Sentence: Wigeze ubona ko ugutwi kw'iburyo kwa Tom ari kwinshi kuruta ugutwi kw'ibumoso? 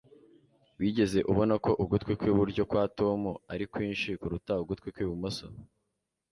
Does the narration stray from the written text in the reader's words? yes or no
no